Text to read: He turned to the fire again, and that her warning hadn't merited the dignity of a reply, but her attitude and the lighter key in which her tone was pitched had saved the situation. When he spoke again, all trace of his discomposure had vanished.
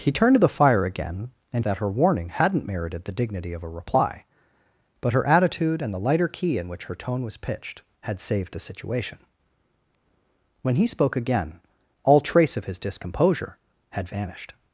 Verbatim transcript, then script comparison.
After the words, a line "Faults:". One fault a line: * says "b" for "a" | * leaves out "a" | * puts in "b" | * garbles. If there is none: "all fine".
He turned to the fire again, and that her warning hadn't merited the dignity of a reply, but her attitude and the lighter key in which her tone was pitched had saved the situation. When he spoke again, all trace of his discomposure had vanished.
Faults:
all fine